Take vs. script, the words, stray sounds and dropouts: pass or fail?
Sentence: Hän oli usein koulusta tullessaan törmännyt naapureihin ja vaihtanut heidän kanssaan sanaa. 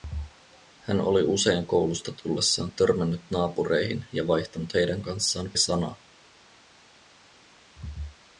pass